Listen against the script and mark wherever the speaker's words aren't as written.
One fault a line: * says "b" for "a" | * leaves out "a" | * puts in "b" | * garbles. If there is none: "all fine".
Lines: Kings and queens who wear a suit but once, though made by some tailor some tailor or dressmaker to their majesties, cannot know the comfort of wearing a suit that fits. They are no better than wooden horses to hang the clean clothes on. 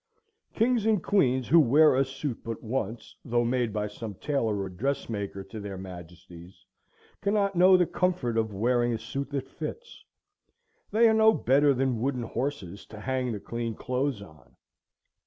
* leaves out "some tailor"